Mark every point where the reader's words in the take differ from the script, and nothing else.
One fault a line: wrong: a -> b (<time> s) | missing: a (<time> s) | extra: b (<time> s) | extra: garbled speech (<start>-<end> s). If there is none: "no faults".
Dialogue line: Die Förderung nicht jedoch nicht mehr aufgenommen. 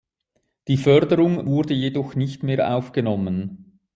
wrong: nicht -> wurde (1.5 s)